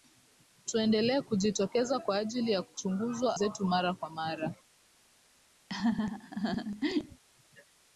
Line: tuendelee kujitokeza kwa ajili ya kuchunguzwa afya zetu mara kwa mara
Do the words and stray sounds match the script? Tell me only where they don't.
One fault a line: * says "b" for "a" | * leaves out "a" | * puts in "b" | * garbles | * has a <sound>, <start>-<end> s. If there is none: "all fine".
* leaves out "afya"
* has a laugh, 5.7-7.2 s